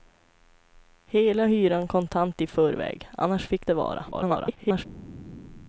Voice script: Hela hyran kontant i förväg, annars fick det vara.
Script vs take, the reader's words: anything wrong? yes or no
yes